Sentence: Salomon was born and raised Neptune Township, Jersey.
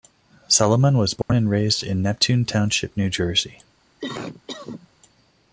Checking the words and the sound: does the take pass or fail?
fail